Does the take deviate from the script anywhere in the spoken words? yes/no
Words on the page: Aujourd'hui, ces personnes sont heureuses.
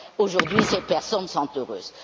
no